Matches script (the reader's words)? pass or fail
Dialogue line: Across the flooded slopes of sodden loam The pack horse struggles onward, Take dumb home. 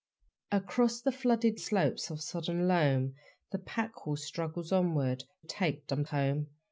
pass